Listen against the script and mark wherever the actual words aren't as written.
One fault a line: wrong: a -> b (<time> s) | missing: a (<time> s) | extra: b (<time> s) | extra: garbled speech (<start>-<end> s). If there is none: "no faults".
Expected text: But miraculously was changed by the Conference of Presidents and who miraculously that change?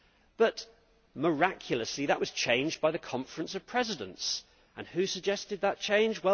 extra: that (2.1 s)
wrong: miraculously -> suggested (5.1 s)